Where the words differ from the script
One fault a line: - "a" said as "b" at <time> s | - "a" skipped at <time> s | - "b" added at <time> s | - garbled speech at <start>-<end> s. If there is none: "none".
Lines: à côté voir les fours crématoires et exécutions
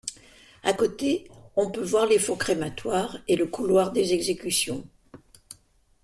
- "on peut" added at 1.6 s
- "le couloir des" added at 3.4 s